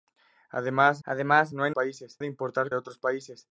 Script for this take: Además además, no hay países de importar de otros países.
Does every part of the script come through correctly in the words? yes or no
yes